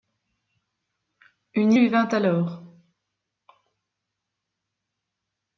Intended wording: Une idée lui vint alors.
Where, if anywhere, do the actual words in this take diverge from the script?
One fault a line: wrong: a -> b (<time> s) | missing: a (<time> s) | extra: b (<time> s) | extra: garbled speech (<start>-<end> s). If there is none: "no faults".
missing: idée (1.7 s)